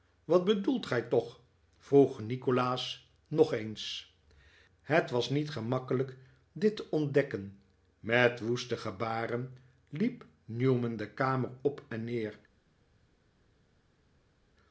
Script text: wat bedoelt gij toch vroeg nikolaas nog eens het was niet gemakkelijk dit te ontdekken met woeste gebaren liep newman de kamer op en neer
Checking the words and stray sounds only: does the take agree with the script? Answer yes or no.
yes